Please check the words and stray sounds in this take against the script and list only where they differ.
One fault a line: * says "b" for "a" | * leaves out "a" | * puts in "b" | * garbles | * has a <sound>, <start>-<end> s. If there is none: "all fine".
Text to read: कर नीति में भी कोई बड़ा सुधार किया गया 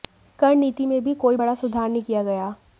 * puts in "नहीं"